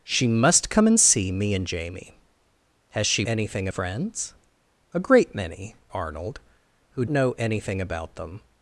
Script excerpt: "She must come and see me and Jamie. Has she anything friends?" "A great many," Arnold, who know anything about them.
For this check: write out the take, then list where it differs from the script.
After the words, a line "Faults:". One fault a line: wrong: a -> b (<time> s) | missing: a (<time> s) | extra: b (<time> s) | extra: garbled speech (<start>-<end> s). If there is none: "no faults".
"She must come and see me and Jamie. Has she anything friends?" "A great many," Arnold, who know anything about them.
Faults:
no faults